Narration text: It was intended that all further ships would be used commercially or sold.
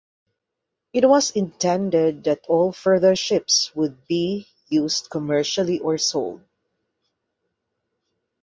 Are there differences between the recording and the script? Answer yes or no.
no